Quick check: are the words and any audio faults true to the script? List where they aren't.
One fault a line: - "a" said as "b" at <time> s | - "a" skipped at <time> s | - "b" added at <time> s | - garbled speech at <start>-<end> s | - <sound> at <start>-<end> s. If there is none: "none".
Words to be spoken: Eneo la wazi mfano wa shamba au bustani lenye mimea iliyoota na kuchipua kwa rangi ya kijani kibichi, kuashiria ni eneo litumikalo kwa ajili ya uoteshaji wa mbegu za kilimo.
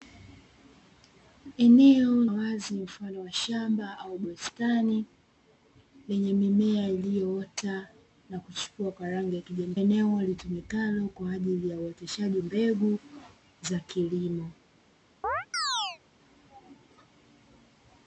- "la" skipped at 2.2 s
- "kibichi kuashiria ni" skipped at 9.7 s
- "wa" skipped at 12.4 s
- chirp at 15.2-16.0 s